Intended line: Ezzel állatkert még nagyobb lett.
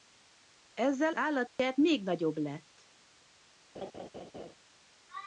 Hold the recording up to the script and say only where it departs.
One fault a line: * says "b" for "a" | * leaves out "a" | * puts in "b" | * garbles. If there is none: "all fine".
all fine